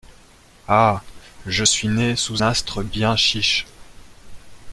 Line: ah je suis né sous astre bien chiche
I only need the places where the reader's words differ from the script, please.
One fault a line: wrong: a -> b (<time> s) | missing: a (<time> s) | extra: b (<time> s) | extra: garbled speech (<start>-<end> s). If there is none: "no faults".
no faults